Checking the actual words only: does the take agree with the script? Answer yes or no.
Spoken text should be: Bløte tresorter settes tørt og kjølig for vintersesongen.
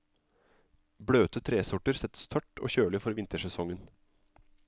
yes